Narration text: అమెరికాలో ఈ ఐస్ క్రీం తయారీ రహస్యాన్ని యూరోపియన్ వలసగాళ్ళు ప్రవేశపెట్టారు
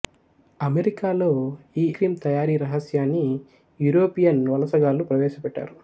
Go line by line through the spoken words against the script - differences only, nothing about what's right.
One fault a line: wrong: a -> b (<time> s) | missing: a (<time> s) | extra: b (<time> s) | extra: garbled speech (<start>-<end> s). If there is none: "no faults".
missing: ఐస్ (1.9 s)